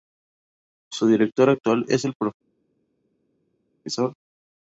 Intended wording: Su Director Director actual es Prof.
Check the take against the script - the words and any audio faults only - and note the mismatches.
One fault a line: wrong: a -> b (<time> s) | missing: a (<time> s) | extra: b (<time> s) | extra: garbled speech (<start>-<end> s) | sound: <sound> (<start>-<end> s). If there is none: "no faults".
missing: Director (1.5 s)
extra: el (2.0 s)